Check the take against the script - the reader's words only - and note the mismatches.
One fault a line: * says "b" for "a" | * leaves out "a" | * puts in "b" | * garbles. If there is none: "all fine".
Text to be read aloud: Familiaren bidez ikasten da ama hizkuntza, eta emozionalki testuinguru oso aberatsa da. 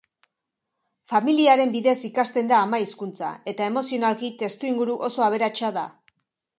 all fine